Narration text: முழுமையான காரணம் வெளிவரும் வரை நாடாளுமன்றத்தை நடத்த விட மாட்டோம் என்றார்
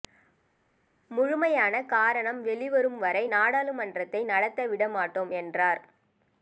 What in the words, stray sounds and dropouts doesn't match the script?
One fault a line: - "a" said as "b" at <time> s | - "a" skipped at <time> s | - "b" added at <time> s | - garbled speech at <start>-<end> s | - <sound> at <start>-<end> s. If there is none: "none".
none